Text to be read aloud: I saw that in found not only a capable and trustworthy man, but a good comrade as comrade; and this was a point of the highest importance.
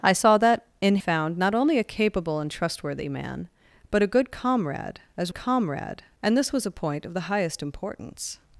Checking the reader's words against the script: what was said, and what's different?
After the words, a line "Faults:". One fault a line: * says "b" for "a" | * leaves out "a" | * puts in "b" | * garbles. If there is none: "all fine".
I saw that in found not only a capable and trustworthy man, but a good comrade as comrade; and this was a point of the highest importance.
Faults:
all fine